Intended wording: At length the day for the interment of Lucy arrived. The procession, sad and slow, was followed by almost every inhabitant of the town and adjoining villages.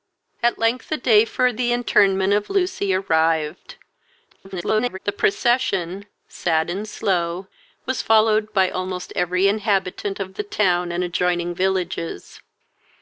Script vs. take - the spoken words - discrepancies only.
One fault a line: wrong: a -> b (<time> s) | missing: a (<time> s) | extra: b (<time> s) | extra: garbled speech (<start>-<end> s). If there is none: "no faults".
extra: garbled speech (4.3-5.0 s)